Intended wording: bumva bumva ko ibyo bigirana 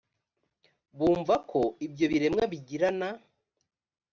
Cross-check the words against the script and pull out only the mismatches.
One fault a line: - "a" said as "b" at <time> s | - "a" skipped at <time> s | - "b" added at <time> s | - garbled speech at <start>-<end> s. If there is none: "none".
- "bumva" skipped at 1.4 s
- "biremwa" added at 2.1 s